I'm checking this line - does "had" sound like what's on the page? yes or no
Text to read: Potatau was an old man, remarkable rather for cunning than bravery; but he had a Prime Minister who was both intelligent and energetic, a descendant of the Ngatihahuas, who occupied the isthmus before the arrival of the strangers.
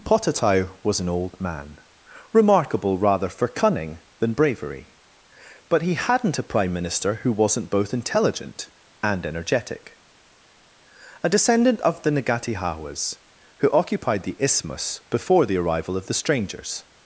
no